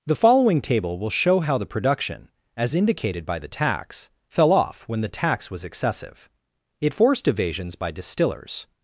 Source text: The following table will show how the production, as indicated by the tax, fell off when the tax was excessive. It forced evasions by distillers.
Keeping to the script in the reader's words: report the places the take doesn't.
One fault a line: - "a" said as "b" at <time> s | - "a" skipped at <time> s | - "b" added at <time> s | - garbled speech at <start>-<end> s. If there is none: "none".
none